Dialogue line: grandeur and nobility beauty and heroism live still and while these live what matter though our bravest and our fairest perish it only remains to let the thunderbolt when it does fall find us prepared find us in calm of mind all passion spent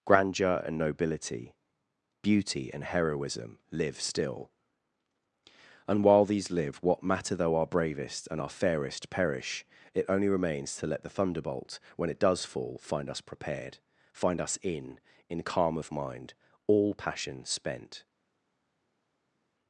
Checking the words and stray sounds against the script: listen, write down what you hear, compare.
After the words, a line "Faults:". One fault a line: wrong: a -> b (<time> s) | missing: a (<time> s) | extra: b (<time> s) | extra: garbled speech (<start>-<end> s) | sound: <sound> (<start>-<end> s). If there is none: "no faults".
grandeur and nobility beauty and heroism live still and while these live what matter though our bravest and our fairest perish it only remains to let the thunderbolt when it does fall find us prepared find us in in calm of mind all passion spent
Faults:
extra: in (15.3 s)